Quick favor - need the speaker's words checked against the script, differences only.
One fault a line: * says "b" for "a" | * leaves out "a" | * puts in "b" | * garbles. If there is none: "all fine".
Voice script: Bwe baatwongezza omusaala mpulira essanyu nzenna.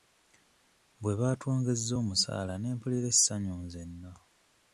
* puts in "ne"